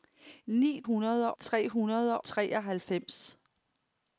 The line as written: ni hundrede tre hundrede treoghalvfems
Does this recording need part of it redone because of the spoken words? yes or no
no